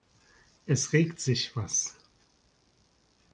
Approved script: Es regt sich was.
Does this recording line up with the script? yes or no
yes